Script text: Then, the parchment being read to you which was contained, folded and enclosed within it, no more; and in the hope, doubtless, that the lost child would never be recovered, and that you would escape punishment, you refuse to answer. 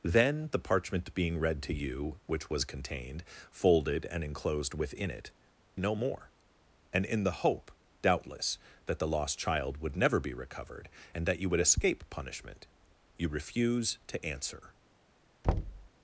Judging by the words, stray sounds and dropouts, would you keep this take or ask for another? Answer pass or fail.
fail